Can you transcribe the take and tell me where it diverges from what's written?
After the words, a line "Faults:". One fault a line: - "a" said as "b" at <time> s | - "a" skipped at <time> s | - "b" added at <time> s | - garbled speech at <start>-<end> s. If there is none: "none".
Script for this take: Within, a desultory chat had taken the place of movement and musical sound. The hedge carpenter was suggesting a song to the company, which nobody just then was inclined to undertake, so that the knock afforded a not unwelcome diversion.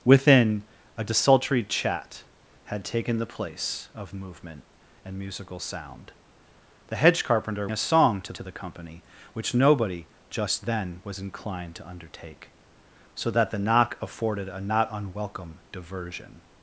Within, a desultory chat had taken the place of movement and musical sound. The hedge carpenter a song to to the company, which nobody just then was inclined to undertake, so that the knock afforded a not unwelcome diversion.
Faults:
- "was suggesting" skipped at 7.7 s
- "to" added at 8.3 s